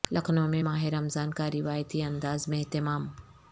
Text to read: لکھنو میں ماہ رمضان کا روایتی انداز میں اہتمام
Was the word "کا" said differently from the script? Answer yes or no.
no